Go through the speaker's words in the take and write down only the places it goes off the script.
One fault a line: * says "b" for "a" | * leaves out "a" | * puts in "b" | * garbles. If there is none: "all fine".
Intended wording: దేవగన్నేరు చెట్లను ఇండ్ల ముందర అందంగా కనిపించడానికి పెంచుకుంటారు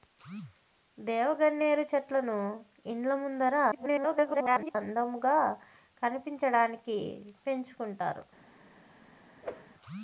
* garbles